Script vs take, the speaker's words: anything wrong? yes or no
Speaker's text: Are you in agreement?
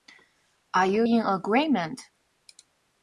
no